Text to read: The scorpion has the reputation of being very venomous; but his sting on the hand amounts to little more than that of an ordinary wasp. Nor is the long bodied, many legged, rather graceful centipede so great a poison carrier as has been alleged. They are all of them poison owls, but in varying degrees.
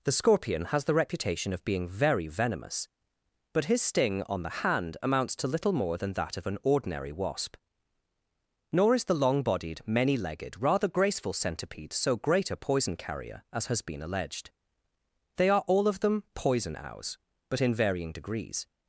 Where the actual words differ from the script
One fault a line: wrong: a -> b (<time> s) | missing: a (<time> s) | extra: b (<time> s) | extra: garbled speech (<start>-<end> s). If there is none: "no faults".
no faults